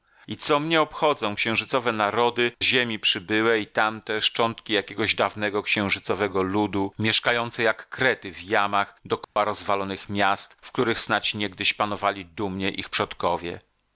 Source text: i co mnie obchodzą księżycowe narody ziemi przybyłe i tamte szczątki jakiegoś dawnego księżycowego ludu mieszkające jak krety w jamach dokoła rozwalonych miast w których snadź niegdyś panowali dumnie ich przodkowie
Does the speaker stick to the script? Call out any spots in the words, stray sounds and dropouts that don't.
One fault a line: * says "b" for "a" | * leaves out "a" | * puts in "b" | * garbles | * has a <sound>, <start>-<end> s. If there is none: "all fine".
* has a dropout, 9.2-9.4 s